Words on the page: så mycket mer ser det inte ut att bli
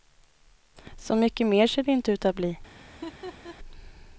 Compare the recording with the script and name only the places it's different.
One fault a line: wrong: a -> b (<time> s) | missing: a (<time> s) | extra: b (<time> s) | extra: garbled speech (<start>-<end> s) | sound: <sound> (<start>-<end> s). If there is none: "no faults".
sound: laugh (2.9-3.6 s)